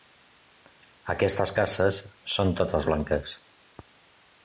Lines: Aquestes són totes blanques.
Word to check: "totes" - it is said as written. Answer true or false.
true